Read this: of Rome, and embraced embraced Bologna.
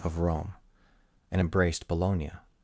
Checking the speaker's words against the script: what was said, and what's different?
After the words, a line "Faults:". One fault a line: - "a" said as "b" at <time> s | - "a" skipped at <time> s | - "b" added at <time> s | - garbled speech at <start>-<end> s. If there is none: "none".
of Rome, and embraced Bologna.
Faults:
- "embraced" skipped at 1.9 s